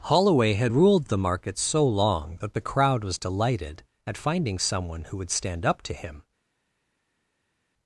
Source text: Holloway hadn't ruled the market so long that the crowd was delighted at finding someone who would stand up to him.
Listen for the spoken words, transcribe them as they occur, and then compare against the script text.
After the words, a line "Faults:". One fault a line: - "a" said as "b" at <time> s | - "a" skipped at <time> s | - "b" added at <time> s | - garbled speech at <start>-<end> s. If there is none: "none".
Holloway had ruled the market so long that the crowd was delighted at finding someone who would stand up to him.
Faults:
- "hadn't" said as "had" at 0.6 s